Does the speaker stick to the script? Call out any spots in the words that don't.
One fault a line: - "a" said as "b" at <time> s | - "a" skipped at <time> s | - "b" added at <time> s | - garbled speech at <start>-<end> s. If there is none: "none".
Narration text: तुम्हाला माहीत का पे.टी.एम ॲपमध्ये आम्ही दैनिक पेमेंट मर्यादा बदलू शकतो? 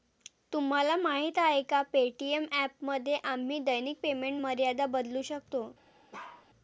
- "आहे" added at 1.4 s